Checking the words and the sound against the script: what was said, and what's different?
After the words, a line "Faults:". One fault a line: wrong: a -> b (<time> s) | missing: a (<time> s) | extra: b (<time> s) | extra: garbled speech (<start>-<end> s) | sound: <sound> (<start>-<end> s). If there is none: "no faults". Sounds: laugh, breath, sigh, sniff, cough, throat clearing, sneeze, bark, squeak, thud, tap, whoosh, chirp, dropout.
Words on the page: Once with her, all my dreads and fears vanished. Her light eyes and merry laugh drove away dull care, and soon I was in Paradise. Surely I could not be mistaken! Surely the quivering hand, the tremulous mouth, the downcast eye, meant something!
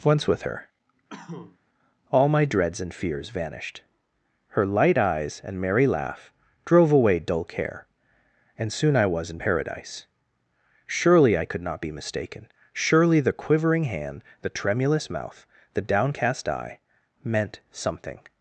Once with her, all my dreads and fears vanished. Her light eyes and merry laugh drove away dull care, and soon I was in Paradise. Surely I could not be mistaken! Surely the quivering hand, the tremulous mouth, the downcast eye, meant something!
Faults:
sound: cough (1.1-1.6 s)